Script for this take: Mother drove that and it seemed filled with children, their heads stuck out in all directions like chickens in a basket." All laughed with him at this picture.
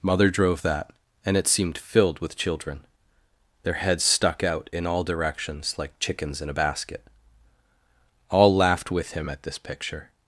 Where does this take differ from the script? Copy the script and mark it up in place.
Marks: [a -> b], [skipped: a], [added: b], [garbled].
Mother drove that and it seemed filled with children, their heads stuck out in all directions like chickens in a basket." All laughed with him at this picture.